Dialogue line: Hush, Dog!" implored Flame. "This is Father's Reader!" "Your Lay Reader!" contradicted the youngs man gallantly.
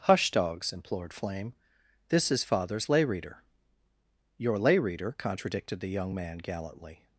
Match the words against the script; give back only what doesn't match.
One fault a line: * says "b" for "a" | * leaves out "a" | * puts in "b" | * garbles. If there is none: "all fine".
* says "Dogs" for "Dog"
* puts in "Lay"
* says "young" for "youngs"